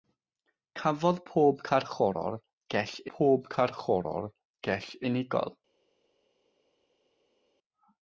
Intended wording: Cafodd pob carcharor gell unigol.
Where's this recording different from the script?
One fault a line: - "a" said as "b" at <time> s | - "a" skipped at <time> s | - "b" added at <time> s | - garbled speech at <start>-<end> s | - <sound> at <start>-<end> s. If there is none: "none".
- "pob carcharor gell" added at 3.2 s